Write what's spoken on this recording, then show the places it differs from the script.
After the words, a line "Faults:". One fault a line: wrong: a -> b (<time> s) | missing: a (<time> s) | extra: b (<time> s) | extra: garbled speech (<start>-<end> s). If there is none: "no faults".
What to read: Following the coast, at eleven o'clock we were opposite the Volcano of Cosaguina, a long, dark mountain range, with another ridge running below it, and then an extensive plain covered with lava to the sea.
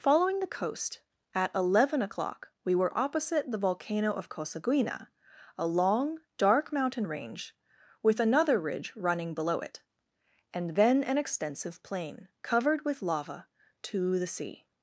Following the coast, at eleven o'clock we were opposite the Volcano of Cosaguina, a long, dark mountain range, with another ridge running below it, and then an extensive plain covered with lava to the sea.
Faults:
no faults